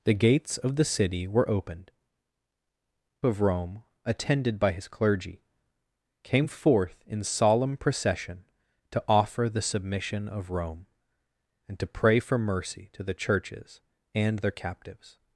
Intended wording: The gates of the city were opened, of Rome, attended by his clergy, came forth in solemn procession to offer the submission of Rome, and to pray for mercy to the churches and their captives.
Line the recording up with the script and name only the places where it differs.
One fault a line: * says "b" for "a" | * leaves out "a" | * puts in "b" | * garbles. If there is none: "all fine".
all fine